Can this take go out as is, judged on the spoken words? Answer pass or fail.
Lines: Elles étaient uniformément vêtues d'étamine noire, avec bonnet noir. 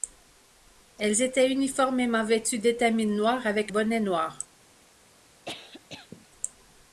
pass